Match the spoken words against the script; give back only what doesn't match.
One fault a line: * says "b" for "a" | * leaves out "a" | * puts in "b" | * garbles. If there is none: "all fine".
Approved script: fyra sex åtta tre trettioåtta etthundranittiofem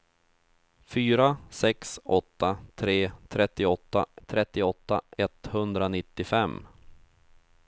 * puts in "trettioåtta"